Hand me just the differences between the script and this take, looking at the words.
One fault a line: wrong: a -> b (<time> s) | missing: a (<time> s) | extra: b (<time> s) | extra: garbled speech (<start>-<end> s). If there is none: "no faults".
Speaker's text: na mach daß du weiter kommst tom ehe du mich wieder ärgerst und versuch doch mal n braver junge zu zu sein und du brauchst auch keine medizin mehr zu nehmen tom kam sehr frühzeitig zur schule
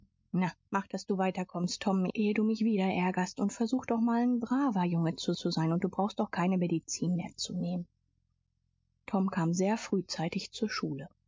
no faults